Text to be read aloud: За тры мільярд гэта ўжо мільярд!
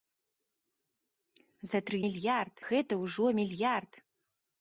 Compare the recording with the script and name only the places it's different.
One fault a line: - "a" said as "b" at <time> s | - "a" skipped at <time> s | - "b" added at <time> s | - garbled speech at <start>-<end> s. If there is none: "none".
none